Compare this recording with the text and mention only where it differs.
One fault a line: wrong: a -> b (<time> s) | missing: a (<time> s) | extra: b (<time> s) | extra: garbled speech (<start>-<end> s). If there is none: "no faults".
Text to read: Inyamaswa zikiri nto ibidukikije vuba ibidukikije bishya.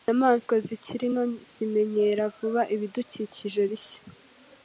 wrong: ibidukikije -> zimenyera (1.5 s)